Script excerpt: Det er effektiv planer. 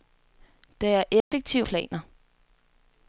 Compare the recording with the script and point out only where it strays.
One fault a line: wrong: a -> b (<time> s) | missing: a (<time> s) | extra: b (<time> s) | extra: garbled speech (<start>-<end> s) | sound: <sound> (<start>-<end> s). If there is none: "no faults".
sound: dropout (1.2-1.3 s)